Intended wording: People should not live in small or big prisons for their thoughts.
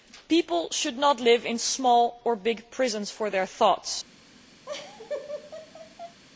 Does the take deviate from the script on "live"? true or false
false